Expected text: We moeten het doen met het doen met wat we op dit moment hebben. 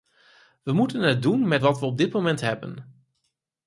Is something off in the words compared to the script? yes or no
yes